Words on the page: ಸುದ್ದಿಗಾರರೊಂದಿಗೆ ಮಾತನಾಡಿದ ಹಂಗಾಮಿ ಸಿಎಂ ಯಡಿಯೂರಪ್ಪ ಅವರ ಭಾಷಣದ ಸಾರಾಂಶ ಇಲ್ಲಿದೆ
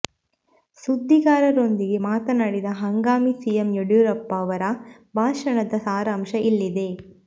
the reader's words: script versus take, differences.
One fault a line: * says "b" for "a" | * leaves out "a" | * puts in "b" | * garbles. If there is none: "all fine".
all fine